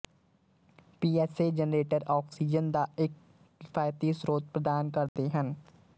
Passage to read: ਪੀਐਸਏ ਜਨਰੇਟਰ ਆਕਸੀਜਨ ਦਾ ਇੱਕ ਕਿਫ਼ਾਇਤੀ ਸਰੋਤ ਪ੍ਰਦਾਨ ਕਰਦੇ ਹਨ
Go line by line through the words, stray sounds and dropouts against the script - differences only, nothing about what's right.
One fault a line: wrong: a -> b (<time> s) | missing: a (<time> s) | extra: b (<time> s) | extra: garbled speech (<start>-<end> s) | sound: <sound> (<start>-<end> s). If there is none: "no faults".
sound: dropout (5.1-5.2 s)